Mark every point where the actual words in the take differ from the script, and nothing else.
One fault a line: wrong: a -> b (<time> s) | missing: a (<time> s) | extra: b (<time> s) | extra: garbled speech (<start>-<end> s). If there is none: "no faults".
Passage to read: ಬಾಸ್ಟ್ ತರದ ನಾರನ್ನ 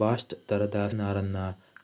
no faults